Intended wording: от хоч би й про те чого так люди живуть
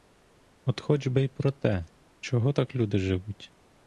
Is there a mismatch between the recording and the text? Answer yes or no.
no